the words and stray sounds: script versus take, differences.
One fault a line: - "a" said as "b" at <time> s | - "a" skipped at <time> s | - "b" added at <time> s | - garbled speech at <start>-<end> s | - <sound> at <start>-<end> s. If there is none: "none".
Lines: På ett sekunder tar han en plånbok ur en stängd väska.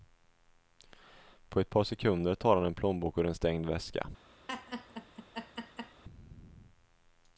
- "par" added at 1.7 s
- laugh at 4.5-6.0 s